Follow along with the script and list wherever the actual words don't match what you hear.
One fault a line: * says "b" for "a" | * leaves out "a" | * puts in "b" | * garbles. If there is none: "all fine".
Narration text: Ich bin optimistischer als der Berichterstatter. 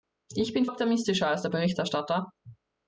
all fine